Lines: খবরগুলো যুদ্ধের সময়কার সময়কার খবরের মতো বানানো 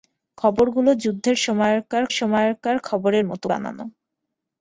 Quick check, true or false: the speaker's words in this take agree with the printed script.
true